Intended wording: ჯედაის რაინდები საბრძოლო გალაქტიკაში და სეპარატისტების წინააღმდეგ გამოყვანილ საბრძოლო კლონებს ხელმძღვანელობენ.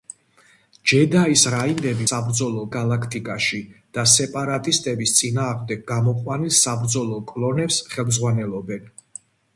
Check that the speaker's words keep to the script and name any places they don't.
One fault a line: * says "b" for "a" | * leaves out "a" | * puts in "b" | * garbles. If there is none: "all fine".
all fine